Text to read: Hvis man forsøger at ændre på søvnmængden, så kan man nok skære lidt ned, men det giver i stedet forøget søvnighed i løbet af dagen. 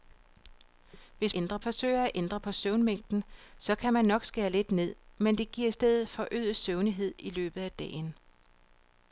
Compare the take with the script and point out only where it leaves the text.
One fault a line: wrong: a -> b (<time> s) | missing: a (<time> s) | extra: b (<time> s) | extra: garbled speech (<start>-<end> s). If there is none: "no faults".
wrong: man -> ændre (1.3 s)